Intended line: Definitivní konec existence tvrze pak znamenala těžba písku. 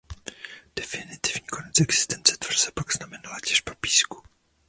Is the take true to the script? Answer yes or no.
yes